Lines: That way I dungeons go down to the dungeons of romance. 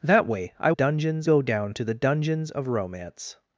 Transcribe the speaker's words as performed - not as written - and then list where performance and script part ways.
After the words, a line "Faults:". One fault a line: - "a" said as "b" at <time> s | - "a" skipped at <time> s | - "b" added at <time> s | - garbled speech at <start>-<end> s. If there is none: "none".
That way I dungeons go down to the dungeons of romance.
Faults:
none